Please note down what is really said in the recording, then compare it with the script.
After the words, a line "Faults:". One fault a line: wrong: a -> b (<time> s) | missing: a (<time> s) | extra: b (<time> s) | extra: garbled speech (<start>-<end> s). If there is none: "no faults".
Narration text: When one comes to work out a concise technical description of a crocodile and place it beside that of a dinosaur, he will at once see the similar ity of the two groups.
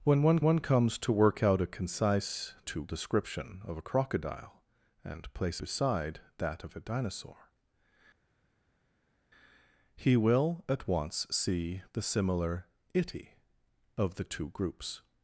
When one one comes to work out a concise two description of a crocodile and place beside that of a dinosaur, he will at once see the similar ity of the two groups.
Faults:
extra: one (0.4 s)
wrong: technical -> two (2.6 s)
missing: it (5.6 s)